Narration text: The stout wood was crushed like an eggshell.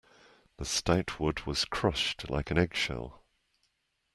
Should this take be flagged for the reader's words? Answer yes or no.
no